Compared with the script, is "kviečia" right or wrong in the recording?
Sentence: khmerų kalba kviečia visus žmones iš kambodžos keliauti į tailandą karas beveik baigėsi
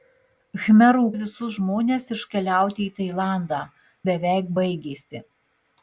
wrong